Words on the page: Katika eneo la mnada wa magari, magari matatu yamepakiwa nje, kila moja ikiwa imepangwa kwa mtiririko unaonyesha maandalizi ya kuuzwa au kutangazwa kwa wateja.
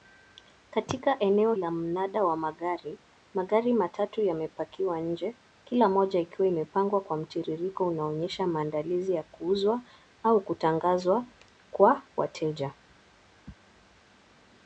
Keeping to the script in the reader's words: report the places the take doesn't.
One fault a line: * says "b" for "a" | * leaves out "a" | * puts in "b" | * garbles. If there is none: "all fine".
all fine